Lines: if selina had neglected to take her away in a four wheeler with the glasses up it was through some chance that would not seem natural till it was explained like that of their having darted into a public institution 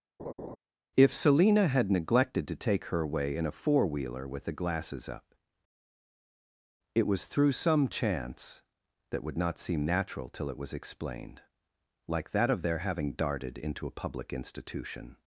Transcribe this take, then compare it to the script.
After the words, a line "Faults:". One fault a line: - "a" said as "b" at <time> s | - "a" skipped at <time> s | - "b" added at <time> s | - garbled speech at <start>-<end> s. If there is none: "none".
if selina had neglected to take her away in a four wheeler with the glasses up it was through some chance that would not seem natural till it was explained like that of their having darted into a public institution
Faults:
none